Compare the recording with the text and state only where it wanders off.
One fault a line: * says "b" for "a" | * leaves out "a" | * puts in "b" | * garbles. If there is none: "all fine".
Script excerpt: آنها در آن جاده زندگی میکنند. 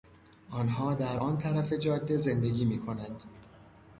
* puts in "طرف"